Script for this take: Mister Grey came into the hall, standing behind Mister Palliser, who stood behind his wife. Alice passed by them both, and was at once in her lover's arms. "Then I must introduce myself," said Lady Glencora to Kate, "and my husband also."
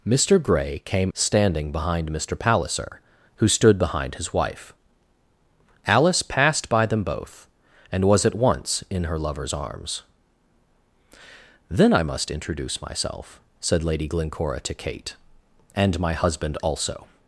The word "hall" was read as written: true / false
false